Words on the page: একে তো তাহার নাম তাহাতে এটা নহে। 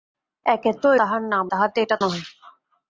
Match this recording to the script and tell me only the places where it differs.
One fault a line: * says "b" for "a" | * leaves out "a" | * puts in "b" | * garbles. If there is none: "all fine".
all fine